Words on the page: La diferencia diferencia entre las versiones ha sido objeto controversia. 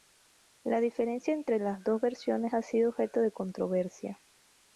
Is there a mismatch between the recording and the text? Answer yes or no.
yes